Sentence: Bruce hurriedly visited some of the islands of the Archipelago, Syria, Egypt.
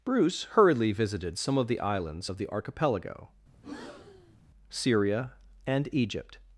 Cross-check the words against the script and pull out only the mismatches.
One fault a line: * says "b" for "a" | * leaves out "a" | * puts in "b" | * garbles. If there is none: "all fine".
* puts in "and"